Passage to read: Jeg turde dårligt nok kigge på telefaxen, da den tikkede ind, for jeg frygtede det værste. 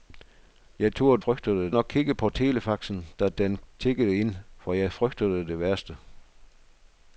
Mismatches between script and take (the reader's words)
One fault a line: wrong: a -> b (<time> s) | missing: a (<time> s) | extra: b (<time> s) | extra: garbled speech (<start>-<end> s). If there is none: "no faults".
wrong: dårligt -> frygtede (1.2 s)